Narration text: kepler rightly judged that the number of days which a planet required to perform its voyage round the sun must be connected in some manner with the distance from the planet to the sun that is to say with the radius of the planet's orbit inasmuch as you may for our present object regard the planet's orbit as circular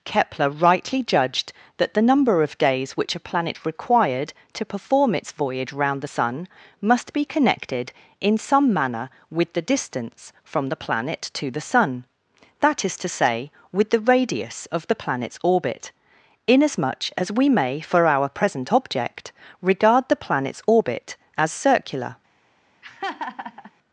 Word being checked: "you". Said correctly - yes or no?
no